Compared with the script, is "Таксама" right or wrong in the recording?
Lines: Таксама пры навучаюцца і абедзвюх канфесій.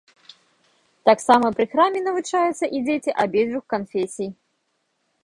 right